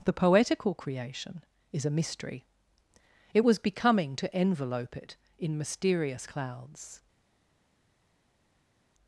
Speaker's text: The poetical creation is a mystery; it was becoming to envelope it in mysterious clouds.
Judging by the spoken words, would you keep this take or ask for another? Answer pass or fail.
pass